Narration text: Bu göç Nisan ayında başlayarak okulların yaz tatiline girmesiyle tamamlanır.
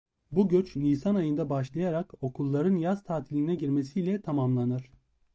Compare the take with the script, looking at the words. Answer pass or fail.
pass